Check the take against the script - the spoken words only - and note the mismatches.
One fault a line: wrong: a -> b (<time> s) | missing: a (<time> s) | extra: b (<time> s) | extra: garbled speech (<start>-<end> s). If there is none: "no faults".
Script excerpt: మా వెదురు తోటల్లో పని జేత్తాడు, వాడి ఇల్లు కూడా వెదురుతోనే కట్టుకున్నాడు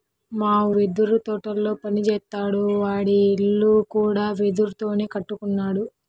no faults